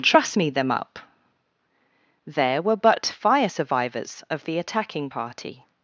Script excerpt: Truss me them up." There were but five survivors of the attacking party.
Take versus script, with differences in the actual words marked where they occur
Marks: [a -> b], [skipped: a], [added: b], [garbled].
Truss me them up." There were but [five -> fire] survivors of the attacking party.